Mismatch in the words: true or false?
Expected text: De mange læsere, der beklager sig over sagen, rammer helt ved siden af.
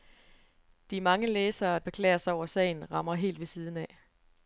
true